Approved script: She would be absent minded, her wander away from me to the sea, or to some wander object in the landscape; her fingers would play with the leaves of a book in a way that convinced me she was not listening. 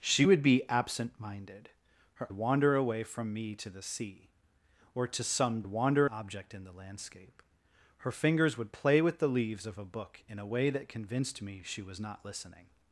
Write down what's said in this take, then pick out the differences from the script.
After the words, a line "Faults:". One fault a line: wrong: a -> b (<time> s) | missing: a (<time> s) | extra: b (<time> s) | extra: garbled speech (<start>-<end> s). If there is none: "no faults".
She would be absent minded, her wander away from me to the sea, or to some wander object in the landscape; her fingers would play with the leaves of a book in a way that convinced me she was not listening.
Faults:
no faults